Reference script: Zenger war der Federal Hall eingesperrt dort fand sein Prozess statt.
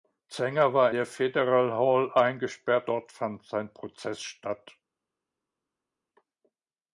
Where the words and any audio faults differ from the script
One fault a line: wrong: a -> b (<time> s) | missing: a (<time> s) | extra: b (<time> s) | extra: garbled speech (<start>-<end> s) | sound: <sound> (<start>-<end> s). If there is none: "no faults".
no faults